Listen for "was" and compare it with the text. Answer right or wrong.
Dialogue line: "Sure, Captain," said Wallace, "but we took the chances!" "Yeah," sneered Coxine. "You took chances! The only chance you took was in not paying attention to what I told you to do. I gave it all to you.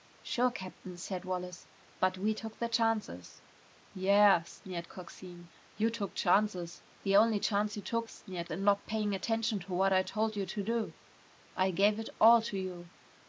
wrong